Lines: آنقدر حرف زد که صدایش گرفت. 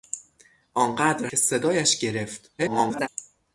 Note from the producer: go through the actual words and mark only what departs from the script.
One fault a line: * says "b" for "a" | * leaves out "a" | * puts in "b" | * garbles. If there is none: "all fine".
* leaves out "حرف زد"
* garbles